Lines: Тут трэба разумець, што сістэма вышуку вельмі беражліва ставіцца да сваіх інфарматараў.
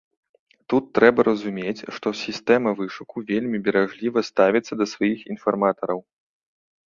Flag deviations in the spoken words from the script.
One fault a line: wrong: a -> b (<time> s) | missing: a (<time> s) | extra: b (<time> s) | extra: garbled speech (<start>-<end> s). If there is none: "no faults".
no faults